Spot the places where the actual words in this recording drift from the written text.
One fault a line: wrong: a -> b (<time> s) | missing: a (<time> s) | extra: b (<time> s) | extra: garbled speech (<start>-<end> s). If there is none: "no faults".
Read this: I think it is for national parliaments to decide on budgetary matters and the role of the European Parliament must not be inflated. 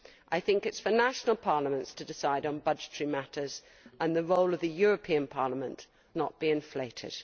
missing: must (5.9 s)